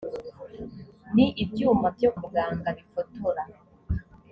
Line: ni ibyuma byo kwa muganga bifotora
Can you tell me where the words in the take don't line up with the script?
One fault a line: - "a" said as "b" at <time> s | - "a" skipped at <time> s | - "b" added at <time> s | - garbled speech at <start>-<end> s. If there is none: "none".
- "kwa" skipped at 2.1 s